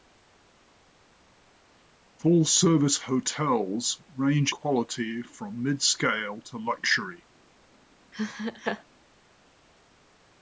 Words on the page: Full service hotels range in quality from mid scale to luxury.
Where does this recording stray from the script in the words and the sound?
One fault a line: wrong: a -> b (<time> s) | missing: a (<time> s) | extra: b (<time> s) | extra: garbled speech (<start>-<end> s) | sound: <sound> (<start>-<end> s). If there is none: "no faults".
missing: in (4.5 s)
sound: laugh (8.1-8.8 s)